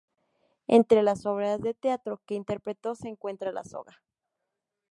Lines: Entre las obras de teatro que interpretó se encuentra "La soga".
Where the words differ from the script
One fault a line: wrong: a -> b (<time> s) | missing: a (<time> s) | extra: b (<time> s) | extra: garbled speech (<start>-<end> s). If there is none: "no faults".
no faults